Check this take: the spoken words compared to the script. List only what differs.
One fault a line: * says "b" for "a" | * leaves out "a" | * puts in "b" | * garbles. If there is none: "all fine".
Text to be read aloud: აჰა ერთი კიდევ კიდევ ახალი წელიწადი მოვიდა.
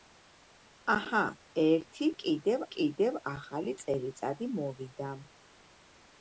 all fine